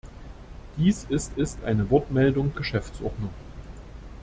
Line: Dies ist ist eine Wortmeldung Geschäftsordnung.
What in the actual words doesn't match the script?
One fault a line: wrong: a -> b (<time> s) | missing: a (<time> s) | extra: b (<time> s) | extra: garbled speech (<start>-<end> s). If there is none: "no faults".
no faults